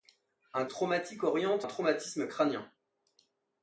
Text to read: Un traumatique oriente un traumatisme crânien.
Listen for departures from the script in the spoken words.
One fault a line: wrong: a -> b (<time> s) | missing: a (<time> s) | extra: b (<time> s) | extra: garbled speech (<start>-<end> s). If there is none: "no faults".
no faults